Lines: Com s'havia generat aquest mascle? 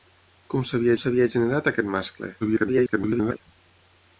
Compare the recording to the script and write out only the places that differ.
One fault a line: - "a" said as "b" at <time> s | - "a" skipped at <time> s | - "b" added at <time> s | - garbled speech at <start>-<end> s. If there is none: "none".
- "s'havia" added at 1.0 s
- garbled speech at 2.4-3.4 s